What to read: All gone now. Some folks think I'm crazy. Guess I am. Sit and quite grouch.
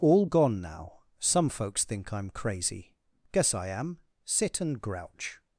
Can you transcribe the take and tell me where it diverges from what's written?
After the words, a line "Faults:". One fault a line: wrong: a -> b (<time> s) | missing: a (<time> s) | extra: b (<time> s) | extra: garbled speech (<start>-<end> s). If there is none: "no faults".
All gone now. Some folks think I'm crazy. Guess I am. Sit and grouch.
Faults:
missing: quite (4.8 s)